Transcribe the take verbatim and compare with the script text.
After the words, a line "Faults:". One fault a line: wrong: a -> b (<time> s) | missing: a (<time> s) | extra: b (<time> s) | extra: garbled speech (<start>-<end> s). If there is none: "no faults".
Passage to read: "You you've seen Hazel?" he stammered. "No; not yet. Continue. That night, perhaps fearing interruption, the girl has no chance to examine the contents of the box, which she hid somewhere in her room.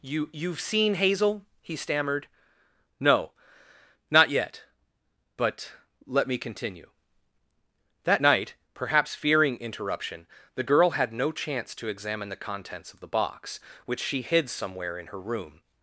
"You you've seen Hazel?" he stammered. "No; not yet. But let me continue. That night, perhaps fearing interruption, the girl had no chance to examine the contents of the box, which she hid somewhere in her room.
Faults:
extra: But let me (5.4 s)
wrong: has -> had (10.9 s)